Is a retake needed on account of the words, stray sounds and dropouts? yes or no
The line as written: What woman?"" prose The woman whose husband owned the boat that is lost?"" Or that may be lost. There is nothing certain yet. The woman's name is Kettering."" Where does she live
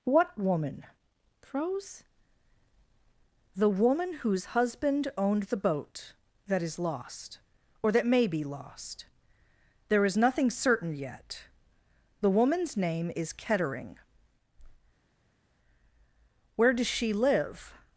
no